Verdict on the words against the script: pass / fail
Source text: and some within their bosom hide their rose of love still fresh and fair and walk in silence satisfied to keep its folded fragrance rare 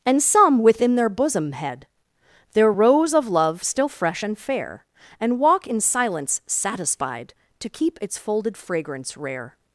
fail